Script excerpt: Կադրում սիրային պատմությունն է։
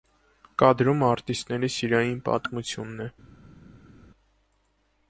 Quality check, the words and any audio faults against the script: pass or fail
fail